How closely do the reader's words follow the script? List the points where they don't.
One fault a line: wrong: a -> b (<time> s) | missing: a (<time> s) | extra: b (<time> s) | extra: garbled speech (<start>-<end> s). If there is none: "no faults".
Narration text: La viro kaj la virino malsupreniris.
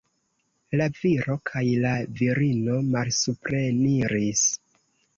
no faults